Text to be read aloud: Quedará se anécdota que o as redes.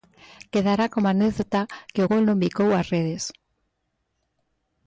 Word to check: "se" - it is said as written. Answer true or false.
false